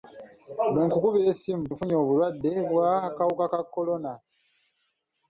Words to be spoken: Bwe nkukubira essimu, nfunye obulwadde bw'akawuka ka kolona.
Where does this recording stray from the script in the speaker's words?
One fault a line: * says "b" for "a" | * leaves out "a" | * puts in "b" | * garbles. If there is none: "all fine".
all fine